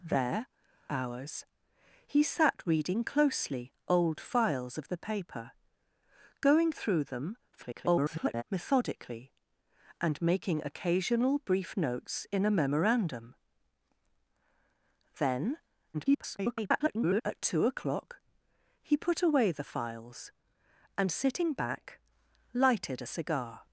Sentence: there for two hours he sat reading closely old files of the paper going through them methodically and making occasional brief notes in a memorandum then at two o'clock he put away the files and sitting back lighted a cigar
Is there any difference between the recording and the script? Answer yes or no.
yes